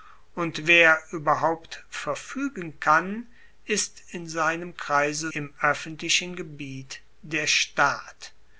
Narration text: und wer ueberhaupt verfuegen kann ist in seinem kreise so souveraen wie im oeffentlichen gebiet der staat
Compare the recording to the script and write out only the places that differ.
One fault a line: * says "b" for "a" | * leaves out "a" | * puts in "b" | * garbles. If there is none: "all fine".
* leaves out "so souveraen wie"